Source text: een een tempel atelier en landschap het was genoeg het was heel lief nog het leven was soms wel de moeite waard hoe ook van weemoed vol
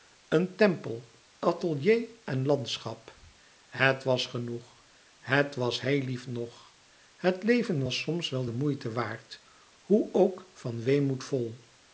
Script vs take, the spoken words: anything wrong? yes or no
yes